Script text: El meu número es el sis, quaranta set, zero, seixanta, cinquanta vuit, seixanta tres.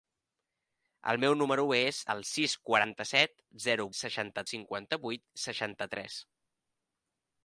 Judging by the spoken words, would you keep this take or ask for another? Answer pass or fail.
pass